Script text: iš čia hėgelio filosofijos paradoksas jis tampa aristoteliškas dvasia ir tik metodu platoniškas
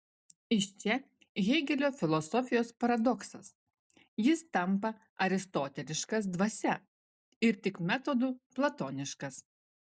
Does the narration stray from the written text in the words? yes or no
no